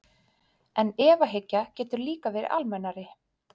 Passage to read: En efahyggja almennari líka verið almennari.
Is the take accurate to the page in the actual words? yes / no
no